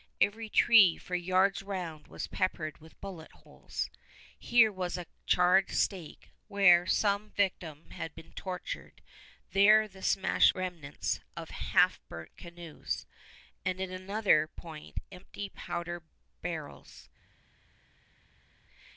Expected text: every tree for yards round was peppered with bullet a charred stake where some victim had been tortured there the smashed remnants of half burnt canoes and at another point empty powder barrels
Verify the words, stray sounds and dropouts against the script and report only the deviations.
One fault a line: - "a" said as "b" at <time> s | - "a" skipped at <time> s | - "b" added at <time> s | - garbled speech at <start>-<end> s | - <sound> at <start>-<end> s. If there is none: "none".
- "holes here was" added at 3.3 s